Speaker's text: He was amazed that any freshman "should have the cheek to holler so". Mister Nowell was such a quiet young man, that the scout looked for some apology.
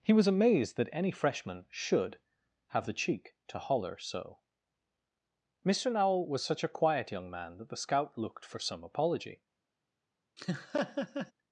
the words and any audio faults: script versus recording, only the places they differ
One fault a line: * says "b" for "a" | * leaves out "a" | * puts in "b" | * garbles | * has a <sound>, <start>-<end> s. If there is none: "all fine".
* has a laugh, 10.4-11.3 s